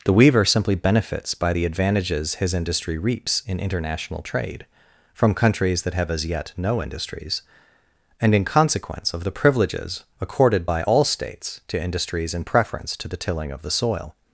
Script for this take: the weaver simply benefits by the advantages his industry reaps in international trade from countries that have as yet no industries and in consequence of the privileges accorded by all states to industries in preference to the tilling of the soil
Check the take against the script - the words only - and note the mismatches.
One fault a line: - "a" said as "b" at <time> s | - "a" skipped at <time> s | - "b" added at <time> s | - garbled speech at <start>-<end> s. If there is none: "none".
none